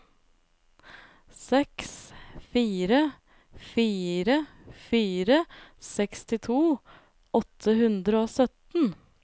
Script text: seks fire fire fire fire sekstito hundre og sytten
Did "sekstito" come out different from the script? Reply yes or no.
yes